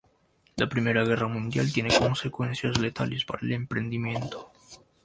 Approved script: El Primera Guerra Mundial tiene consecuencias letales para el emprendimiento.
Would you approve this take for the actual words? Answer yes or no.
no